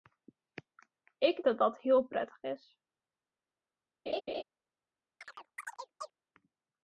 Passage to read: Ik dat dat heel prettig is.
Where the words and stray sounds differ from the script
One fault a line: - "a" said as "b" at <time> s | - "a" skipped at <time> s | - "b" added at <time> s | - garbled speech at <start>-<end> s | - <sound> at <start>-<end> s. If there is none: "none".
- laugh at 4.1-4.4 s
- chirp at 5.2-6.1 s